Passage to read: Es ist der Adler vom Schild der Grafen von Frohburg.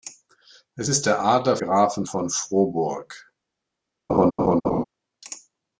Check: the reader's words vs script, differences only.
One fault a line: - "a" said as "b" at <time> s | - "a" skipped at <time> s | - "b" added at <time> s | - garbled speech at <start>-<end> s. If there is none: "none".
- "vom Schild der" skipped at 1.6 s